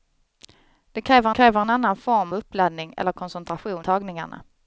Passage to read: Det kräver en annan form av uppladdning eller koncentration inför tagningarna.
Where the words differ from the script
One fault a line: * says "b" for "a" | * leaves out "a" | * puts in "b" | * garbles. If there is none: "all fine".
* puts in "kräver"
* leaves out "av"
* leaves out "inför"